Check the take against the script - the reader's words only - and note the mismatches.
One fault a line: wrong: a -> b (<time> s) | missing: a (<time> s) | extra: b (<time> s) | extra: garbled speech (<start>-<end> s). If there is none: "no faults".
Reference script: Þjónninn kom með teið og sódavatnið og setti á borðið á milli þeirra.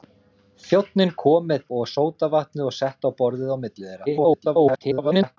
missing: teið (1.7 s)
extra: garbled speech (4.1-5.4 s)